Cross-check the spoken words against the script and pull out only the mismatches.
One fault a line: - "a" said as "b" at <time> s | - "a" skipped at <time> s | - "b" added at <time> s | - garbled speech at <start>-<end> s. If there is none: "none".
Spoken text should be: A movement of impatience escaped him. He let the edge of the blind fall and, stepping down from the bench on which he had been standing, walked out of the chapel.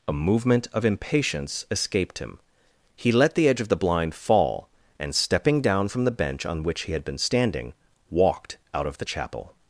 none